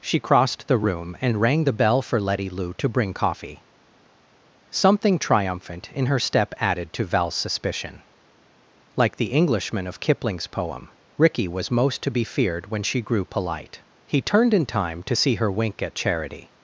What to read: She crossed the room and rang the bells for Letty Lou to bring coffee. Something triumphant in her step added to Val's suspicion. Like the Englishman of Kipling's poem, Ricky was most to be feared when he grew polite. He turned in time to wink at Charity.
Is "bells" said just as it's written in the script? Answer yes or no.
no